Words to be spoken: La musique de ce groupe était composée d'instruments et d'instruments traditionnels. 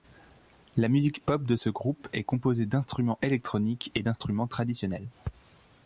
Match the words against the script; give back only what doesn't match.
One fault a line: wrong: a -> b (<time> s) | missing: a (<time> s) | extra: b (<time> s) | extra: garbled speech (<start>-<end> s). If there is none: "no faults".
extra: pop (1.2 s)
wrong: était -> est (2.1 s)
extra: électroniques (3.2 s)